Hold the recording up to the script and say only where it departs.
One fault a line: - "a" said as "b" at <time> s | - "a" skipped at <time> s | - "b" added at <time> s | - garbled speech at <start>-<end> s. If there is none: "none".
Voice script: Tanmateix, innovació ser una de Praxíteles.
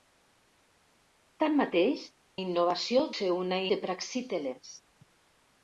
none